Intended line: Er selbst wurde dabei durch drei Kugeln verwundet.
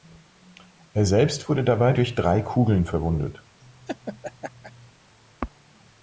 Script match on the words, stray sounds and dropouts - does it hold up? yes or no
no